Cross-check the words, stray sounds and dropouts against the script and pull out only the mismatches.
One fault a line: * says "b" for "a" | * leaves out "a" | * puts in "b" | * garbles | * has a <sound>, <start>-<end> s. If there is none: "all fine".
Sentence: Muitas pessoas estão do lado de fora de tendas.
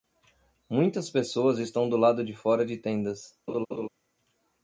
* has a laugh, 3.5-3.9 s